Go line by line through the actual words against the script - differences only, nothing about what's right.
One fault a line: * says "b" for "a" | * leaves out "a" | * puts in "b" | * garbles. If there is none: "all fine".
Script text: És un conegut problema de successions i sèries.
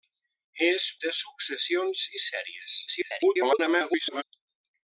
* leaves out "un conegut problema"
* garbles